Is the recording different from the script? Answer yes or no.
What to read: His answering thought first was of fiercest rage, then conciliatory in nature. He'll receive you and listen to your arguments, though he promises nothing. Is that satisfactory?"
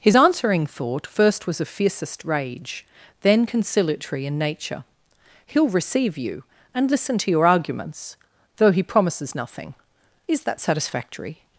no